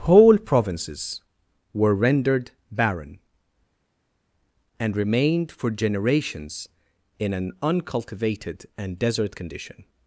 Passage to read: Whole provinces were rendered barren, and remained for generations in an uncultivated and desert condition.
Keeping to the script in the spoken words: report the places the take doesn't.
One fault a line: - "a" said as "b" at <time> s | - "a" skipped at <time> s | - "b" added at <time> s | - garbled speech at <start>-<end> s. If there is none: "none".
none